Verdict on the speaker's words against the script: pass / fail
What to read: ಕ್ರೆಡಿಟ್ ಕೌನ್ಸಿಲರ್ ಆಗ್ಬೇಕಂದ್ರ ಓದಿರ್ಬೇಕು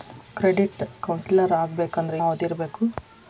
pass